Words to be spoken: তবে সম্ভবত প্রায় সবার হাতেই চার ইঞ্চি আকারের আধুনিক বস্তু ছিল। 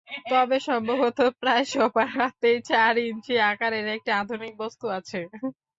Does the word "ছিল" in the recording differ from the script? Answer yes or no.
yes